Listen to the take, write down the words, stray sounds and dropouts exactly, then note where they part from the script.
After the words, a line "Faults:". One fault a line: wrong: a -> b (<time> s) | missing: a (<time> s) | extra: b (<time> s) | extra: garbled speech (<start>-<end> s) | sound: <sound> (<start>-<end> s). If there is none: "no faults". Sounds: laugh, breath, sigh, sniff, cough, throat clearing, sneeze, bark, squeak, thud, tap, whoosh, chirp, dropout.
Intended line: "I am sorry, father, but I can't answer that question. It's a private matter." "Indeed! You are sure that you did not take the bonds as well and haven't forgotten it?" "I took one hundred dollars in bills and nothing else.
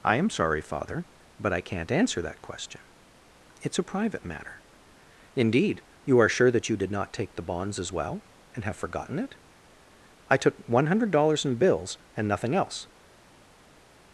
"I am sorry, father, but I can't answer that question. It's a private matter." "Indeed! You are sure that you did not take the bonds as well and have forgotten it?" "I took one hundred dollars in bills and nothing else.
Faults:
wrong: haven't -> have (8.6 s)